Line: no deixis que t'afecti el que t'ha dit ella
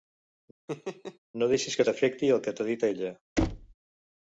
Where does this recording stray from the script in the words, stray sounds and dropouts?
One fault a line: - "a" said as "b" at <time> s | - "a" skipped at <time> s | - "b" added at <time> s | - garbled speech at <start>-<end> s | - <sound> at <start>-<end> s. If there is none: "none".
- laugh at 0.7-1.2 s
- thud at 3.4-3.7 s